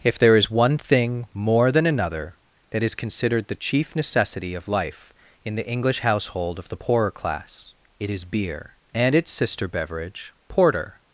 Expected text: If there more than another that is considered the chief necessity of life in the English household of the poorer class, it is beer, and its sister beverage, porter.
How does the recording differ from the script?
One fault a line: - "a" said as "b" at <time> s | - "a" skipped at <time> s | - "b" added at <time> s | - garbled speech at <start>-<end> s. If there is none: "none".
- "is one thing" added at 0.3 s